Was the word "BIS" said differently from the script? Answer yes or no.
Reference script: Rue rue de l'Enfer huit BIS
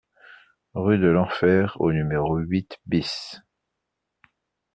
no